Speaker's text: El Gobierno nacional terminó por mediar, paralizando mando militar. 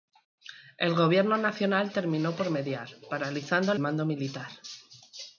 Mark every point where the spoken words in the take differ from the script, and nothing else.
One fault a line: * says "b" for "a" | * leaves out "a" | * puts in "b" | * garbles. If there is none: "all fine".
all fine